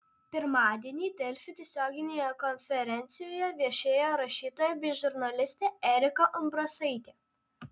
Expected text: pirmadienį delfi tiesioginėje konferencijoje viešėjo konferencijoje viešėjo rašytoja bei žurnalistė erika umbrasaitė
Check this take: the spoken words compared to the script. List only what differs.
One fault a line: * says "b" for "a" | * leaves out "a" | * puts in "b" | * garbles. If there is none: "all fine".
* leaves out "konferencijoje viešėjo"